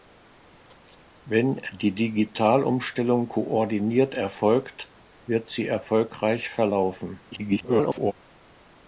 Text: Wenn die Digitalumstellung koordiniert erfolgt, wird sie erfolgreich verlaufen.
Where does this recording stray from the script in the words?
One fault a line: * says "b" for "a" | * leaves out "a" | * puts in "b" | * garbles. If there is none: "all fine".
* garbles